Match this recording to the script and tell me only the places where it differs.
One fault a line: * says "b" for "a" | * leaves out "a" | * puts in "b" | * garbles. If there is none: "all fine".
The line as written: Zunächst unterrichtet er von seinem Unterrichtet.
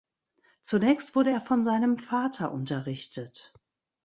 * says "wurde" for "unterrichtet"
* puts in "Vater"